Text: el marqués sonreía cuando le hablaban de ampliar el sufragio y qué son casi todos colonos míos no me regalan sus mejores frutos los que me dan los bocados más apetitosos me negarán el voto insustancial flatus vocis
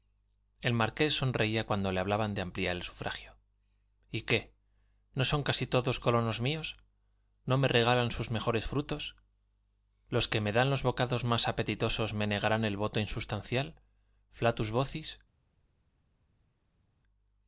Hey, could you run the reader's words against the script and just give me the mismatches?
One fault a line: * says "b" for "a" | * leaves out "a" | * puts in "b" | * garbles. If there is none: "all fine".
* puts in "no"